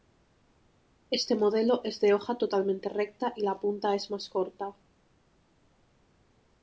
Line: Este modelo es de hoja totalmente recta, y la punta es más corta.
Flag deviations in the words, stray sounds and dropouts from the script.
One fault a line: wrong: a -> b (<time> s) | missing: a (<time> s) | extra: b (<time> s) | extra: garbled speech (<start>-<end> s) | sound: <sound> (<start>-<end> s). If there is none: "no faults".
no faults